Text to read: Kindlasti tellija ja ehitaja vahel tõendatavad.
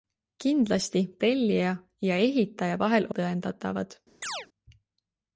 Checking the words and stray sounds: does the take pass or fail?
fail